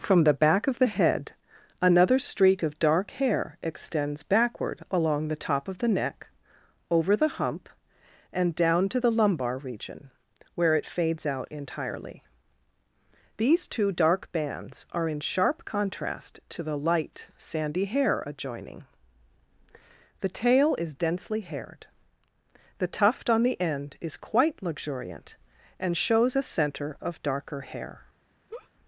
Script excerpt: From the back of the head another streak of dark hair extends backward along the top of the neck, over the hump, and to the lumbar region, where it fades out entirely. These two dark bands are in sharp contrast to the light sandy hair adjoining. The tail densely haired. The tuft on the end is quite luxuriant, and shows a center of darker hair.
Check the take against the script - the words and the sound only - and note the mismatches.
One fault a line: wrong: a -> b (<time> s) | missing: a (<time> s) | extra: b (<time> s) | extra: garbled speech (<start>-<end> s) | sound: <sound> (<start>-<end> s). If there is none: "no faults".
extra: down (8.6 s)
extra: is (20.8 s)
sound: laugh (28.5-28.7 s)